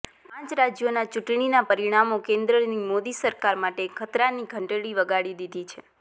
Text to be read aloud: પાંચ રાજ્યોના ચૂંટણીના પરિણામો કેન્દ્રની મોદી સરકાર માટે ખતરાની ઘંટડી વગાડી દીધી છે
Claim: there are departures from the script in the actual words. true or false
false